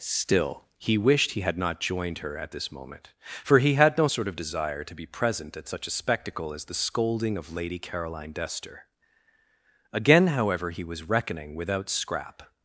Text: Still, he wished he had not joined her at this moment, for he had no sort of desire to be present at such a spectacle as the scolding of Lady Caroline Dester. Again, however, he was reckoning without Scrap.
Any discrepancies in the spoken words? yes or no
no